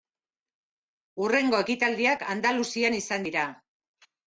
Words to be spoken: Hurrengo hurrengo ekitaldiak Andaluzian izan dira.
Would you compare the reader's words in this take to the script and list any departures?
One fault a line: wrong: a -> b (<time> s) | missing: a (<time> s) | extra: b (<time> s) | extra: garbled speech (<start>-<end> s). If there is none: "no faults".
missing: hurrengo (1.6 s)